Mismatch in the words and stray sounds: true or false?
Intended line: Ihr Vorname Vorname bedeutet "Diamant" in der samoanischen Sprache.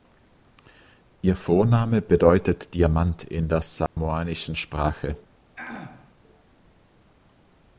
true